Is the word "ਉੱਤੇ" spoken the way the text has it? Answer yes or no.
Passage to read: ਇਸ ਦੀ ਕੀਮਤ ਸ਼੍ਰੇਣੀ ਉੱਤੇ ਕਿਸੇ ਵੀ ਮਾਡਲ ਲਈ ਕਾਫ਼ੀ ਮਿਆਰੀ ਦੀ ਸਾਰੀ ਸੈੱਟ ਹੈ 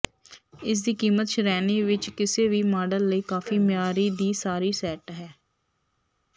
no